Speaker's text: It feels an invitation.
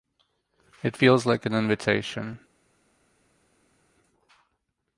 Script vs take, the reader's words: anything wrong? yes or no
yes